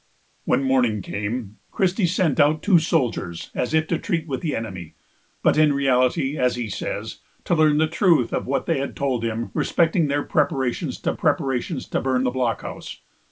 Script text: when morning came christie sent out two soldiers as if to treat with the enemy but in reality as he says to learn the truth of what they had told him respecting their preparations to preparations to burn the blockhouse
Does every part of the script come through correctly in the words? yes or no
yes